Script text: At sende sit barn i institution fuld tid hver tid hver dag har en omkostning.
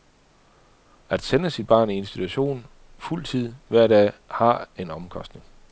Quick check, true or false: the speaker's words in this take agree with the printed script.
false